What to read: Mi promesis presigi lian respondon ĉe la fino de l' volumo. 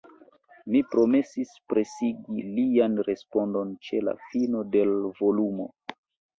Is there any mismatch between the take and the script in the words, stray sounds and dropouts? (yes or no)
no